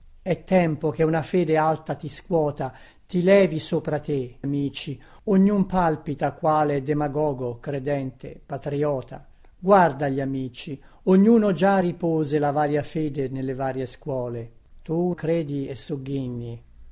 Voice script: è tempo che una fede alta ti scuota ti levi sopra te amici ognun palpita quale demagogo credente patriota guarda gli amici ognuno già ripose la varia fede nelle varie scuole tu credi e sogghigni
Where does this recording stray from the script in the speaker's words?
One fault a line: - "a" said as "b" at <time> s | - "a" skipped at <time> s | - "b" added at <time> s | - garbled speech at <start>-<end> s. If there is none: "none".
none